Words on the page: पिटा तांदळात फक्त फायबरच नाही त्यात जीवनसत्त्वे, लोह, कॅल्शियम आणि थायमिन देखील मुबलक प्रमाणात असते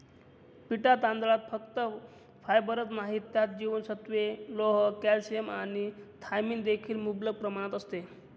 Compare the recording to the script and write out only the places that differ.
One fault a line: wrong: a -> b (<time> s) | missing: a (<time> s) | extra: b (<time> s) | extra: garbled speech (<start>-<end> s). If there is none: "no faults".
no faults